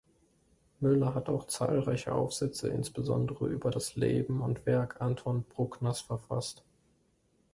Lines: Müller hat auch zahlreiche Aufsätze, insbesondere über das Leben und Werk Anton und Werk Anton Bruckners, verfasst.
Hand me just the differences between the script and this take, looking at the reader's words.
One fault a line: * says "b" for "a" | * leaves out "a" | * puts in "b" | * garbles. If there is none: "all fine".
* leaves out "und Werk Anton"